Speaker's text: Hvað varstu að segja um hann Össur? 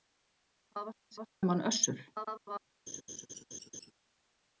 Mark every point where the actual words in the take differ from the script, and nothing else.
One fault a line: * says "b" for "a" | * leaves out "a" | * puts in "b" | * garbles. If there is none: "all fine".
* says "varstu" for "segja"
* garbles